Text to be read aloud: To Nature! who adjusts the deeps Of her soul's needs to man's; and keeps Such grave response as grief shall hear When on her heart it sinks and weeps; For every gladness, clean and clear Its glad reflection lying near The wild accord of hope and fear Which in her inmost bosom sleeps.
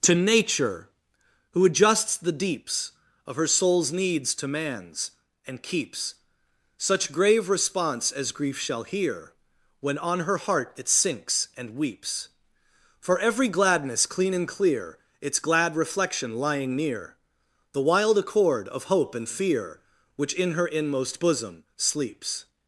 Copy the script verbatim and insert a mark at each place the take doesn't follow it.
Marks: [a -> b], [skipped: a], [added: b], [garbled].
To Nature! who adjusts the deeps Of her soul's needs to man's; and keeps Such grave response as grief shall hear When on her heart it sinks and weeps; For every gladness, clean and clear Its glad reflection lying near The wild accord of hope and fear Which in her inmost bosom sleeps.